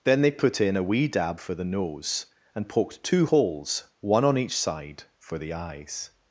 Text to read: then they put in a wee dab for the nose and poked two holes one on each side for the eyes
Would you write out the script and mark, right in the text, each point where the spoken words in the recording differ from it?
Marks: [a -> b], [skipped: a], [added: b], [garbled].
then they put in a wee dab for the nose and poked two holes one on each side for the eyes